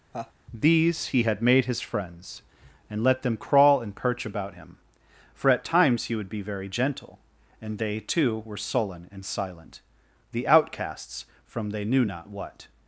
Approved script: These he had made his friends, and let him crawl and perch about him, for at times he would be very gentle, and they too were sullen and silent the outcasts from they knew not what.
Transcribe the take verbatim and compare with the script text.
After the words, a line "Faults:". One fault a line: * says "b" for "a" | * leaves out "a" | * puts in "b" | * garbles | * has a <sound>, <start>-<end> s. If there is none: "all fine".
These he had made his friends, and let them crawl and perch about him, for at times he would be very gentle, and they too were sullen and silent the outcasts from they knew not what.
Faults:
* has a laugh, 0.1-0.3 s
* says "them" for "him"